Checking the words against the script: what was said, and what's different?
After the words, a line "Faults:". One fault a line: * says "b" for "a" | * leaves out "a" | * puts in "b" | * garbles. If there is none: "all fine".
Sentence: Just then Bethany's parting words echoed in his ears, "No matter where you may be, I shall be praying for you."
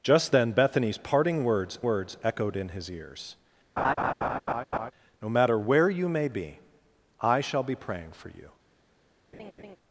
Just then Bethany's parting words words echoed in his ears, "No matter where you may be, I shall be praying for you."
Faults:
* puts in "words"